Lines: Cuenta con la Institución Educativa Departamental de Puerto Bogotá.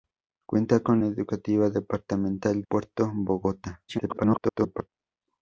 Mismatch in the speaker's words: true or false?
true